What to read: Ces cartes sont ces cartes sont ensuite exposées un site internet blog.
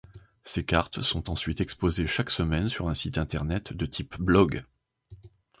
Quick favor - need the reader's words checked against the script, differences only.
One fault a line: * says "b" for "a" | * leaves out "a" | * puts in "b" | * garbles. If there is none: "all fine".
* says "ensuite exposées chaque semaine sur" for "ces cartes sont ensuite exposées"
* puts in "de type"